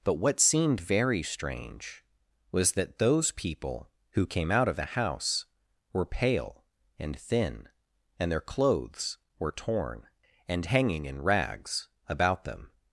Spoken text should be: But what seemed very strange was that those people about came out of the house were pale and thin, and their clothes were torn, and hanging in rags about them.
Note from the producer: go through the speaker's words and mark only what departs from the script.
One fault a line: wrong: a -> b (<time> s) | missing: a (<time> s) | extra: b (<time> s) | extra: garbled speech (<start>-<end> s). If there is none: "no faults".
wrong: about -> who (4.1 s)